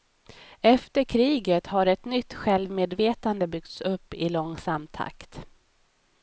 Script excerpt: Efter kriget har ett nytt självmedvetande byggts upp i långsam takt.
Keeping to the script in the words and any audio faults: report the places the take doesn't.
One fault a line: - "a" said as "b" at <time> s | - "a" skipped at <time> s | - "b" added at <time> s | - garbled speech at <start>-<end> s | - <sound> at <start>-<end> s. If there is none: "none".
none